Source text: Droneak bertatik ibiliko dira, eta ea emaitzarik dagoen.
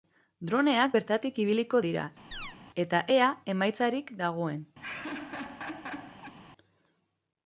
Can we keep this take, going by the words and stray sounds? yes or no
no